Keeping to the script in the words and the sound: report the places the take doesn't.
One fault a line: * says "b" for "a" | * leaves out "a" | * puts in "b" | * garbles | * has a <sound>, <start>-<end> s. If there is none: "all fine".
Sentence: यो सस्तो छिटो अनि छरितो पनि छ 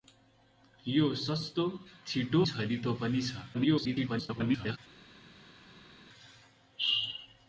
* leaves out "अनि"
* garbles